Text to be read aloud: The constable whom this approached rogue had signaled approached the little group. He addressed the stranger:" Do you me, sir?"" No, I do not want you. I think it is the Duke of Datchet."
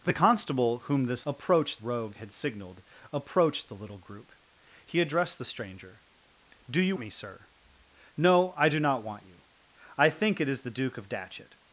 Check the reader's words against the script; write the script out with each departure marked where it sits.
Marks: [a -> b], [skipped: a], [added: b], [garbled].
The constable whom this approached rogue had signaled approached the little group. He addressed the stranger:" Do you me, sir?"" No, I do not want you. I think it is the Duke of Datchet."